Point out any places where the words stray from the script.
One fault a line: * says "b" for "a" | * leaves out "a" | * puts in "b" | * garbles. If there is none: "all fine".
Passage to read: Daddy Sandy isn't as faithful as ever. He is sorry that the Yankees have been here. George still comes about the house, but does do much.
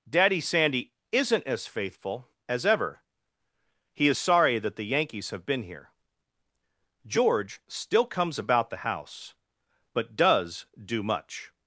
all fine